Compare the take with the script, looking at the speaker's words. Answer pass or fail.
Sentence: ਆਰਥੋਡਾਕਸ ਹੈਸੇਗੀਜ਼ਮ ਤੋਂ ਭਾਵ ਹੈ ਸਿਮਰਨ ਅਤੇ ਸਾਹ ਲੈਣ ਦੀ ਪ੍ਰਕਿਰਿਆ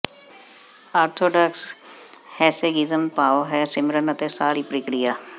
fail